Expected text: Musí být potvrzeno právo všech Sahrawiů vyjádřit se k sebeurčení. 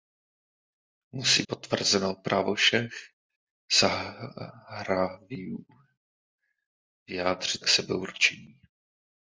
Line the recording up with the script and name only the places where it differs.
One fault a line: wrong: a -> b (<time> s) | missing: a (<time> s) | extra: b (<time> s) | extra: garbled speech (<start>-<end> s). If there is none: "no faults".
missing: být (1.4 s)
missing: se (7.6 s)